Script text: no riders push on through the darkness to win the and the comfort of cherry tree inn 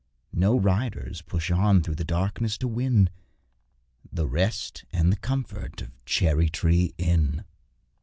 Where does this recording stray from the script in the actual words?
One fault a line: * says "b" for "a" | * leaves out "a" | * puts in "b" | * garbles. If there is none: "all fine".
* puts in "rest"